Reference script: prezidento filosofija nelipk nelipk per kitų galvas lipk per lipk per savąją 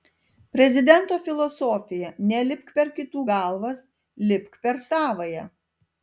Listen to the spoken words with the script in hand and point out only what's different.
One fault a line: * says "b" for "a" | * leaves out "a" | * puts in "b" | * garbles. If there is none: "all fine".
* leaves out "nelipk"
* leaves out "lipk per"